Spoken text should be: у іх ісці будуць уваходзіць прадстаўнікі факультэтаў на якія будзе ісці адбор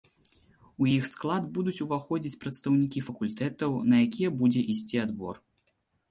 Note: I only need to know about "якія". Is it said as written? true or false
true